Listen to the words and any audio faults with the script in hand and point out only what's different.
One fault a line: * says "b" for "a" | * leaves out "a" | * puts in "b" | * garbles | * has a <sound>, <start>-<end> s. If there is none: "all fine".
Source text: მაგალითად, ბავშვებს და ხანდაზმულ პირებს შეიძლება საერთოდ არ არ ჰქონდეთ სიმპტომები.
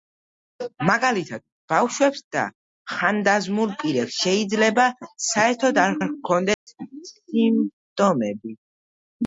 * has a dropout, 6.5-6.7 s